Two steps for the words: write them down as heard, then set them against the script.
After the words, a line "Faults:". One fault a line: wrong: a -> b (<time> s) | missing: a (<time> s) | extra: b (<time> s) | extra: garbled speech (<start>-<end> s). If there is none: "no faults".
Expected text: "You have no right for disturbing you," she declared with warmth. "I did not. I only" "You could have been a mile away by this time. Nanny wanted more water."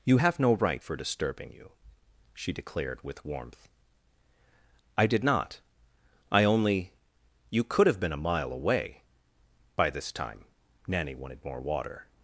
"You have no right for disturbing you," she declared with warmth. "I did not. I only" "You could have been a mile away by this time. Nanny wanted more water."
Faults:
no faults